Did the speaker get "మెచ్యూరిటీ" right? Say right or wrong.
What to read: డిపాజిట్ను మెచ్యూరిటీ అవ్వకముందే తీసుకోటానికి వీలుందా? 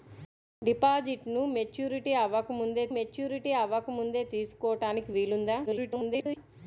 right